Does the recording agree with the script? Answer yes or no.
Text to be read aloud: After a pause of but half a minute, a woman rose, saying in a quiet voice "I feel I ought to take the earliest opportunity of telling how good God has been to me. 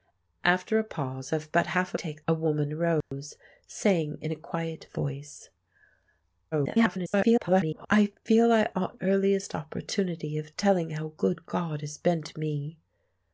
no